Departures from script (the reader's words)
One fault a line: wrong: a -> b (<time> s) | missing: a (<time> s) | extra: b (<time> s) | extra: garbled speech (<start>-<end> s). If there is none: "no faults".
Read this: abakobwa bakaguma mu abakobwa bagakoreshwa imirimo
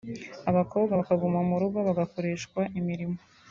wrong: abakobwa -> rugo (1.6 s)